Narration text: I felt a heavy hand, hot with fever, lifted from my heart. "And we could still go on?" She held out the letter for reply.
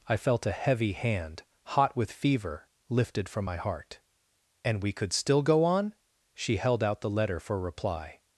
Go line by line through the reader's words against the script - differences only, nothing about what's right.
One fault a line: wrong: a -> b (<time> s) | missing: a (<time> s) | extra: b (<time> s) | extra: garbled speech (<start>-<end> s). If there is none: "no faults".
no faults